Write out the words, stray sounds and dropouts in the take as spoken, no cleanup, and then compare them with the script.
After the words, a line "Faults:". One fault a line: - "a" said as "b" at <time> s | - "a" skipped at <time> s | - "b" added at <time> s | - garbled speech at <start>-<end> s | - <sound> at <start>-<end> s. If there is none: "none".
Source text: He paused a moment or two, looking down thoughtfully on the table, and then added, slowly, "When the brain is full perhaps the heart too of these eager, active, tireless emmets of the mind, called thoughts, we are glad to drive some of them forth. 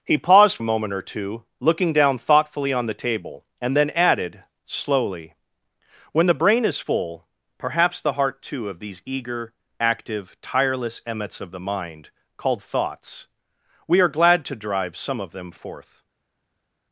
He paused a moment or two, looking down thoughtfully on the table, and then added, slowly, "When the brain is full perhaps the heart too of these eager, active, tireless emmets of the mind, called thoughts, we are glad to drive some of them forth.
Faults:
none